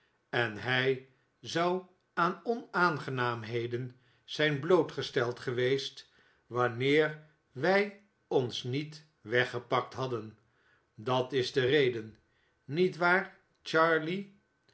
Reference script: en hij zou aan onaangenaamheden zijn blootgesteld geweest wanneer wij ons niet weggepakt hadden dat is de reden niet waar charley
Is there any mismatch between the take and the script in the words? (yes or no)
no